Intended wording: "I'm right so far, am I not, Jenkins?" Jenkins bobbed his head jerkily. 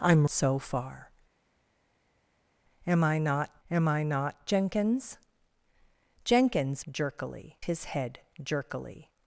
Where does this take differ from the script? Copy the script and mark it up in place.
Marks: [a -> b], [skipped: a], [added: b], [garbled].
"I'm [skipped: right] so far, am I not, [added: am I not] Jenkins?" Jenkins [bobbed -> jerkily] his head jerkily.